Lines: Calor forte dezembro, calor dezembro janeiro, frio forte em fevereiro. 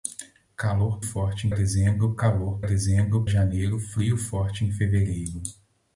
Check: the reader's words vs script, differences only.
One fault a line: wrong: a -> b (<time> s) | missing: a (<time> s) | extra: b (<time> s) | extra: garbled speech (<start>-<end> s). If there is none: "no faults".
no faults